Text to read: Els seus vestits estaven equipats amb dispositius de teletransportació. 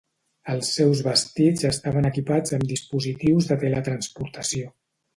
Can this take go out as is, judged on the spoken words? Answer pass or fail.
pass